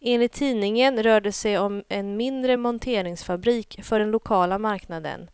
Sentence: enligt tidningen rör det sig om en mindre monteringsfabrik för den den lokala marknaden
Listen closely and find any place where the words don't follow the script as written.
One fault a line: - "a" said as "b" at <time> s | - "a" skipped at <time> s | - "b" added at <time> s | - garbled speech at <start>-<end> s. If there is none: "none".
- "den" skipped at 4.1 s